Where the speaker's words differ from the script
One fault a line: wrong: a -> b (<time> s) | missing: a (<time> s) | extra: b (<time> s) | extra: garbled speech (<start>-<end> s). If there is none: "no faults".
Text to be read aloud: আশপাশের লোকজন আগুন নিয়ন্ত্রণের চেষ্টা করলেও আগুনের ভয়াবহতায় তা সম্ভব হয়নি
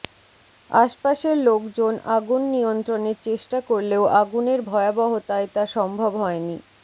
no faults